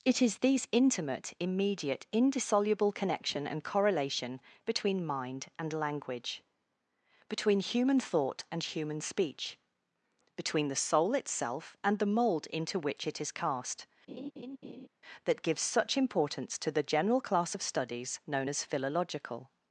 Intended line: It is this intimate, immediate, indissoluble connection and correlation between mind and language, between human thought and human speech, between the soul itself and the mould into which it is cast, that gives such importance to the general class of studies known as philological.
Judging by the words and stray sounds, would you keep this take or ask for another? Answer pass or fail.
fail